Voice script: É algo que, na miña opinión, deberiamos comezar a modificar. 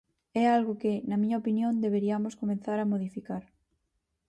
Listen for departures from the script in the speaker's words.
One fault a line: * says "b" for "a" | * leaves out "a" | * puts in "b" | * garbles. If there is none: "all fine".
all fine